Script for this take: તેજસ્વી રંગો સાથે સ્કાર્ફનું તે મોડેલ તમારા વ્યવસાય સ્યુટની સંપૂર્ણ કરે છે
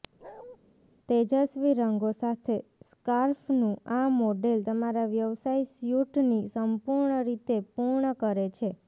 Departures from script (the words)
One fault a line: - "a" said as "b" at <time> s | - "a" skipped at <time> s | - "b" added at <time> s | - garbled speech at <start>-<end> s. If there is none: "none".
- "તે" said as "આ" at 3.9 s
- "રીતે પૂર્ણ" added at 7.3 s